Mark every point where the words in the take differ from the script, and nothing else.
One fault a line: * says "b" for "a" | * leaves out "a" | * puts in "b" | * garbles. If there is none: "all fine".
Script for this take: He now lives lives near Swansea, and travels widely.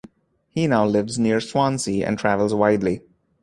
* leaves out "lives"